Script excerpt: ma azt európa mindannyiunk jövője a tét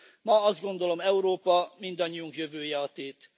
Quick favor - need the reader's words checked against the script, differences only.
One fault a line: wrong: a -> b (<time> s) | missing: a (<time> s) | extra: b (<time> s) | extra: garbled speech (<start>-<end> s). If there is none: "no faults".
extra: gondolom (0.6 s)